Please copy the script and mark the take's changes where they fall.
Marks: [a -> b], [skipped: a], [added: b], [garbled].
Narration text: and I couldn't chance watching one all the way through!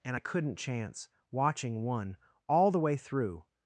and I couldn't chance watching one all the way through!